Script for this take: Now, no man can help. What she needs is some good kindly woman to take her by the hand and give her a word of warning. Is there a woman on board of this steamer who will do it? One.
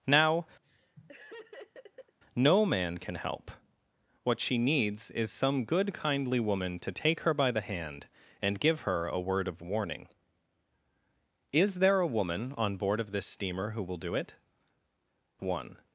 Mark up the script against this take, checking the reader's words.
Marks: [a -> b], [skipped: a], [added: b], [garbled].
Now, no man can help. What she needs is some good kindly woman to take her by the hand and give her a word of warning. Is there a woman on board of this steamer who will do it? One.